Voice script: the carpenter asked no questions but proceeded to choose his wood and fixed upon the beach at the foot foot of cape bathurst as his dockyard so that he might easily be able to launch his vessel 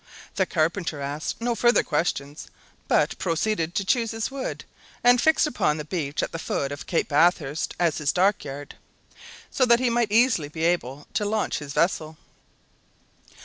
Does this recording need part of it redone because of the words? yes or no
yes